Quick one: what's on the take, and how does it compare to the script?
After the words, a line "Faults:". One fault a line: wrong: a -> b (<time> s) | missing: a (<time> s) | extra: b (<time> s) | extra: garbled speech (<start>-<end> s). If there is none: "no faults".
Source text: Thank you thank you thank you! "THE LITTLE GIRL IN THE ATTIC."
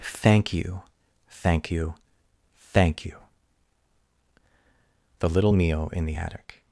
Thank you thank you thank you! "THE LITTLE Mio IN THE ATTIC."
Faults:
wrong: GIRL -> Mio (5.5 s)